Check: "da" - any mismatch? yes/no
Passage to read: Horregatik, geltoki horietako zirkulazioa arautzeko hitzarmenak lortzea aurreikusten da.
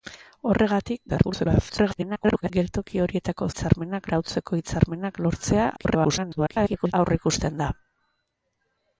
no